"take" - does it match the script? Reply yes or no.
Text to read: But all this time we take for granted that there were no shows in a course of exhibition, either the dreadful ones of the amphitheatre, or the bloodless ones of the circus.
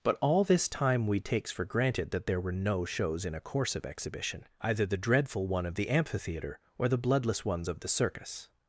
no